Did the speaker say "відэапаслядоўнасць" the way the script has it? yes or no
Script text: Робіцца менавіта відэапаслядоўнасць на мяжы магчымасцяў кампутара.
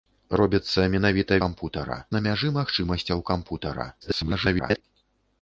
no